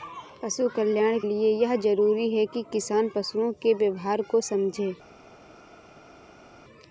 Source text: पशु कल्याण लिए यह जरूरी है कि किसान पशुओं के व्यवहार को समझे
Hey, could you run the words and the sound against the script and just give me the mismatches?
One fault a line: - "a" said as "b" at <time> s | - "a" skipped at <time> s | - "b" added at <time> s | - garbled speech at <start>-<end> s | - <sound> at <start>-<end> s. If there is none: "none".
none